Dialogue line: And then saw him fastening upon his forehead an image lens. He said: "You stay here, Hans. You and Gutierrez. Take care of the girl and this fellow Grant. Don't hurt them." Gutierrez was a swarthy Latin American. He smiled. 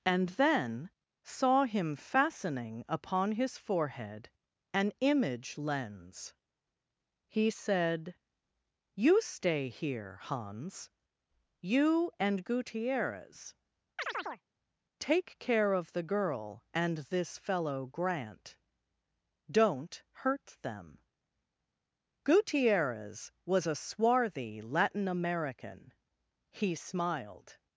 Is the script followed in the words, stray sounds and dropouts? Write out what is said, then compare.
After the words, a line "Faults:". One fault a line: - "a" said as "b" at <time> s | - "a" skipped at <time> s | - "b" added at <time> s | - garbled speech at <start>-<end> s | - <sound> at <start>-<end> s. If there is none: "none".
And then saw him fastening upon his forehead an image lens. He said: "You stay here, Hans. You and Gutierrez. Take care of the girl and this fellow Grant. Don't hurt them." Gutierrez was a swarthy Latin American. He smiled.
Faults:
- chirp at 14.0-14.4 s